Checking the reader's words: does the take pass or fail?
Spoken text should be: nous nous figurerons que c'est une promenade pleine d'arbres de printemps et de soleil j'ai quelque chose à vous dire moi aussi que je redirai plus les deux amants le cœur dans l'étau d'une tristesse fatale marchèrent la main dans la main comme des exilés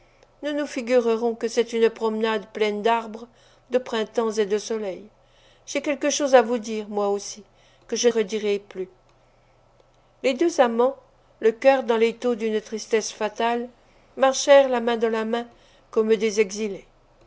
pass